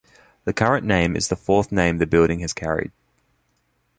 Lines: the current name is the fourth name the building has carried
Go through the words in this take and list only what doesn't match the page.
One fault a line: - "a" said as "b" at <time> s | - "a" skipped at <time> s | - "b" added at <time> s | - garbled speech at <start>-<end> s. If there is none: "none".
none